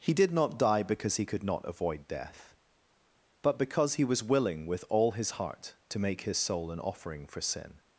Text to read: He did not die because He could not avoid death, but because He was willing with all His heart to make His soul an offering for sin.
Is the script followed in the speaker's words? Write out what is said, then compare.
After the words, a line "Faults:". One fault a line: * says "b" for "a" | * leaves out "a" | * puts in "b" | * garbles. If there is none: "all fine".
He did not die because He could not avoid death, but because He was willing with all His heart to make His soul an offering for sin.
Faults:
all fine